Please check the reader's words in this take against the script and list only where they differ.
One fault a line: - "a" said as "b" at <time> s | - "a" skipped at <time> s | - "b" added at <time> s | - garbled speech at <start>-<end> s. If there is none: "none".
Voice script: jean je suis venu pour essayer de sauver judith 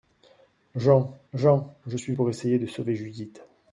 - "jean" added at 1.3 s
- "venu" skipped at 2.1 s